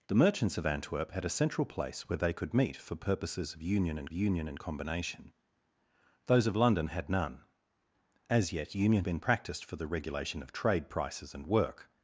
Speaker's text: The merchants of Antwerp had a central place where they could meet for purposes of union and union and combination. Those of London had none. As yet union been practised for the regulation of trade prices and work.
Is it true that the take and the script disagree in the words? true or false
false